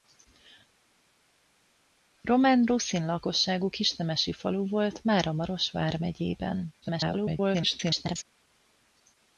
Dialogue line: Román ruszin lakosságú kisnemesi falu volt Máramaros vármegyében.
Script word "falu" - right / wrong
right